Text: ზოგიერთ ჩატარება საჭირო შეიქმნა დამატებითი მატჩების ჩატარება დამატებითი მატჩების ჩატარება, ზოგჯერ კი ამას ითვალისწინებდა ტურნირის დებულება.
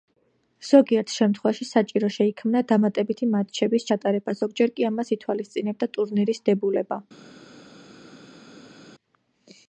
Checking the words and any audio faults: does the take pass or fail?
fail